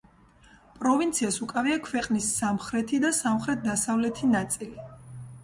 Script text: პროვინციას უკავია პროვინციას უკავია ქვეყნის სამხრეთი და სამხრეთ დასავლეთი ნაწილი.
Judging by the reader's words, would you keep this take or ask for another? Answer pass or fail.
fail